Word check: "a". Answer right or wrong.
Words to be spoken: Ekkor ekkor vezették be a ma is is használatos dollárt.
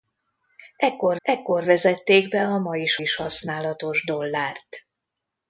right